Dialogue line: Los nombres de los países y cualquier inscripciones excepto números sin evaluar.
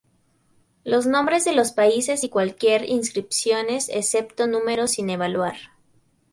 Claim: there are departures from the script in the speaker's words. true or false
false